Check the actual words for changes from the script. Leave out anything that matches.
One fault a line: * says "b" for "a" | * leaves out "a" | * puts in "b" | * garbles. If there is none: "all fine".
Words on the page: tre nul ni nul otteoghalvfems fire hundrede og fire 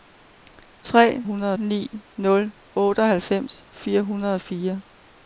* says "hundrede" for "nul"